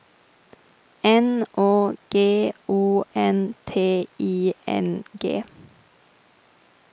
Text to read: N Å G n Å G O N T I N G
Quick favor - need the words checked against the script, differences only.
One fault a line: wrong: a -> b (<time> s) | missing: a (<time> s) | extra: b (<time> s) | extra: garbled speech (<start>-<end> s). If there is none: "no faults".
missing: n Å G (2.5 s)